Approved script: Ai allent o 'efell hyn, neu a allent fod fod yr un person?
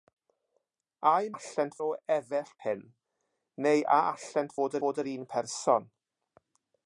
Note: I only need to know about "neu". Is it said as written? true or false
true